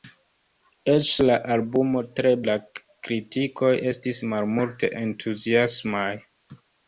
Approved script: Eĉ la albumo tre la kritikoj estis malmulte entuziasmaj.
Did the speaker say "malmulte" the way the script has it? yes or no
yes